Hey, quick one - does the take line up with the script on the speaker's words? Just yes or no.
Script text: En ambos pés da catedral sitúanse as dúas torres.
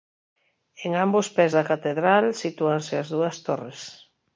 yes